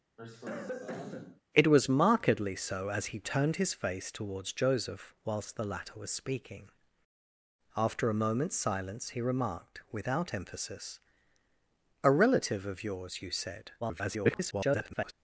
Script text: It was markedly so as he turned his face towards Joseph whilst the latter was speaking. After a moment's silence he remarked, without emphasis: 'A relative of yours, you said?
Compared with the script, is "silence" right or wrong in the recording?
right